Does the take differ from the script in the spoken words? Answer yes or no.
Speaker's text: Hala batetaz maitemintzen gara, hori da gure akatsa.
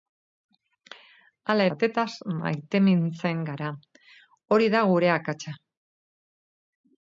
no